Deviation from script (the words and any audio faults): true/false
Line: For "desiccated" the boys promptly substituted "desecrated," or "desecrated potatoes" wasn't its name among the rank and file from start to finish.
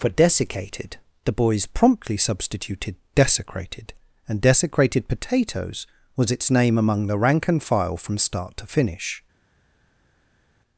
true